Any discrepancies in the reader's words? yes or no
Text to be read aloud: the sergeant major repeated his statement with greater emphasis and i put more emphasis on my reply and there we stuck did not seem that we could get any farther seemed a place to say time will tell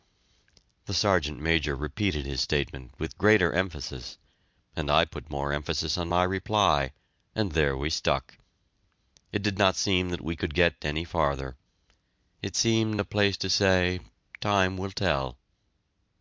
yes